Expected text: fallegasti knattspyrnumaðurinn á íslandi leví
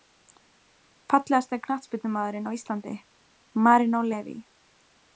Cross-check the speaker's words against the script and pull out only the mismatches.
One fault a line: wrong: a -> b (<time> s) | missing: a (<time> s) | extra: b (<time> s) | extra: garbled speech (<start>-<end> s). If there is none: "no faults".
extra: marinó (3.7 s)